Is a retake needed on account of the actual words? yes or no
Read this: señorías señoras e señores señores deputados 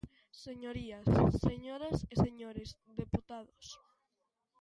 yes